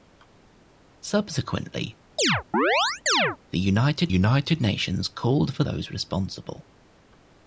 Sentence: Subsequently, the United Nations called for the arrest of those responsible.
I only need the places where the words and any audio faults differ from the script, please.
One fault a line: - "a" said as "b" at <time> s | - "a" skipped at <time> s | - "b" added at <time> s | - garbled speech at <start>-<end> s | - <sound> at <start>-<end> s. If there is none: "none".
- chirp at 2.2-3.4 s
- "United" added at 4.1 s
- "the arrest of" skipped at 5.6 s